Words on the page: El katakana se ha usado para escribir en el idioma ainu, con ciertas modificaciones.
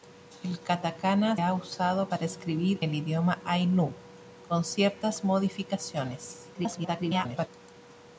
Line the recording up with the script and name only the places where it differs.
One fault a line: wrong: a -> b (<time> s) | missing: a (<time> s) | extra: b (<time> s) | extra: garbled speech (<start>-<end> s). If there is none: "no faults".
missing: se (1.4 s)
missing: en (2.8 s)
extra: garbled speech (6.5-7.5 s)